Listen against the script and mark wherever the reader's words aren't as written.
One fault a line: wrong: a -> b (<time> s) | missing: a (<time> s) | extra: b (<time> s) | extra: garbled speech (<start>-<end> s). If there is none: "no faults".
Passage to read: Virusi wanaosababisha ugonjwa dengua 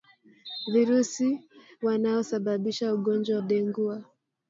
no faults